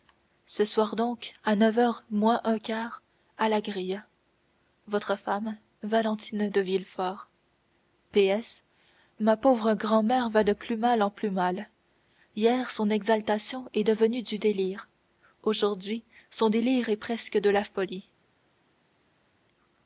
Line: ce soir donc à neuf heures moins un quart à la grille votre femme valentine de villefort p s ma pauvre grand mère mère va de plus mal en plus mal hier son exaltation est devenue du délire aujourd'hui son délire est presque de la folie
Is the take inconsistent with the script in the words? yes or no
yes